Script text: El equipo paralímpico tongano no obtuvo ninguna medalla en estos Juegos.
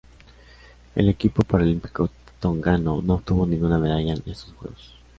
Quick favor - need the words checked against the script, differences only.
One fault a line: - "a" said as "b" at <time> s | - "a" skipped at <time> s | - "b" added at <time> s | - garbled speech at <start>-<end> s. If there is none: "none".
none